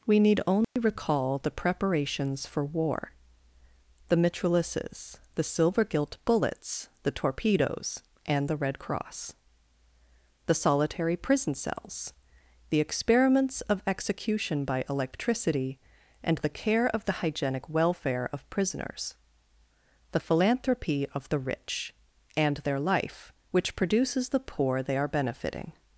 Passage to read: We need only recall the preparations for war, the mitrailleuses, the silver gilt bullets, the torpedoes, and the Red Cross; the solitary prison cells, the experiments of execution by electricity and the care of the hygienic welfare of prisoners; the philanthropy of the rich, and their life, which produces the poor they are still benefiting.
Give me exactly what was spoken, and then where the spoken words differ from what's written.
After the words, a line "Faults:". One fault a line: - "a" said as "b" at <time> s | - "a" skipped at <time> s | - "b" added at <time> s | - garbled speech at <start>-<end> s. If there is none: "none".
We need only recall the preparations for war, the mitrailleuses, the silver gilt bullets, the torpedoes, and the Red Cross; the solitary prison cells, the experiments of execution by electricity and the care of the hygienic welfare of prisoners; the philanthropy of the rich, and their life, which produces the poor they are benefiting.
Faults:
- "still" skipped at 25.1 s